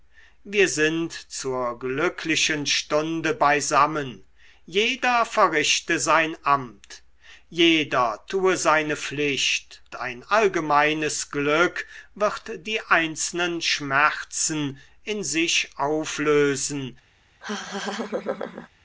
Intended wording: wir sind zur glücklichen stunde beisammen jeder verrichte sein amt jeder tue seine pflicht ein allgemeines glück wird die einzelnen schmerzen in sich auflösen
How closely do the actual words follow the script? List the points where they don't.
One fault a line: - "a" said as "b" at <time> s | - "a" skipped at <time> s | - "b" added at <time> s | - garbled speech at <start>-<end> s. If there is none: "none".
none